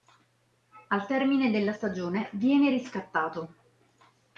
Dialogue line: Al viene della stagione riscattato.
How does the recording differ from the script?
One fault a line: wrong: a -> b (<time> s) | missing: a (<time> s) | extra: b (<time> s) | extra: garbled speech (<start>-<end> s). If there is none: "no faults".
wrong: viene -> termine (1.1 s)
extra: viene (2.3 s)